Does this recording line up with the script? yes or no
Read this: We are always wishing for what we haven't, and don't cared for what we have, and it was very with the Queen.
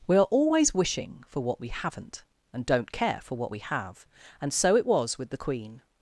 no